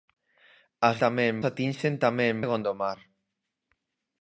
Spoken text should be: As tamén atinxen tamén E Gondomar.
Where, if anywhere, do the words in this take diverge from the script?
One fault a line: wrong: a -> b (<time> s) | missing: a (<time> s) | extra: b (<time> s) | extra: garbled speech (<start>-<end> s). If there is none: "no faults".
no faults